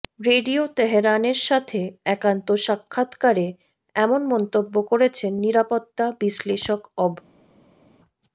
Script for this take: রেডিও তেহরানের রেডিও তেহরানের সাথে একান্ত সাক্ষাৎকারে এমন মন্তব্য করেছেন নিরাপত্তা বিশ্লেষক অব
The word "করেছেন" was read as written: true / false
true